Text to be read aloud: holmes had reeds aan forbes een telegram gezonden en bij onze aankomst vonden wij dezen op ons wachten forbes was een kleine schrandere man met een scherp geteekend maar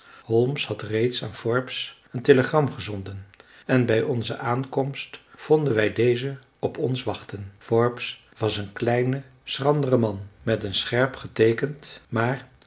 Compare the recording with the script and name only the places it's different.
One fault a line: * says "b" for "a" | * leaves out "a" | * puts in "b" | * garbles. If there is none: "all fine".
all fine